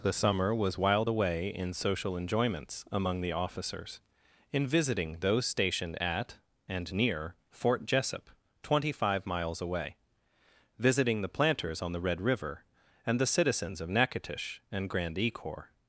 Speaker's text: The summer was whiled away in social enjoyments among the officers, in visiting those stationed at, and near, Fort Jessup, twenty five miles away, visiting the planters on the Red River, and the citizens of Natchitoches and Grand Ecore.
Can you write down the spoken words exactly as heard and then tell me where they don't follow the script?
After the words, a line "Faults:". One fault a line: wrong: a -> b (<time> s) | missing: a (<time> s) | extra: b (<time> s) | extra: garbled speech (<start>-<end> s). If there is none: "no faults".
The summer was whiled away in social enjoyments among the officers, in visiting those stationed at, and near, Fort Jessup, twenty five miles away, visiting the planters on the Red River, and the citizens of Natchitoches and Grand Ecore.
Faults:
no faults